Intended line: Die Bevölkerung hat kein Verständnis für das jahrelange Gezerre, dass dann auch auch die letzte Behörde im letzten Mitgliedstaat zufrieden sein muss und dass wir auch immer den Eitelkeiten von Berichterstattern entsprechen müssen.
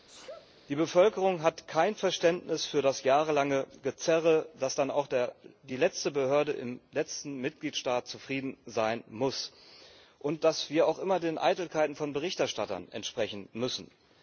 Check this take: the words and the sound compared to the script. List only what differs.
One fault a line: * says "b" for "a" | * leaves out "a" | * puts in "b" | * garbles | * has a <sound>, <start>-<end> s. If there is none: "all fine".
* has a sneeze, 0.1-0.5 s
* leaves out "auch"